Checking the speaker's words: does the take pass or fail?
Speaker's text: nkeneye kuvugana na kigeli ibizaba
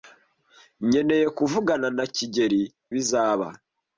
pass